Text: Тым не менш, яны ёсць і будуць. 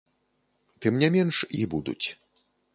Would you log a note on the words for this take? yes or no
yes